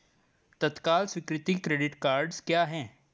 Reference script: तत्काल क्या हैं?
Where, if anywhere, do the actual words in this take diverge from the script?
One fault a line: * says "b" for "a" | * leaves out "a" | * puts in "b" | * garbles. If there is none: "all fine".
* puts in "स्वीकृति क्रेडिट कार्डस"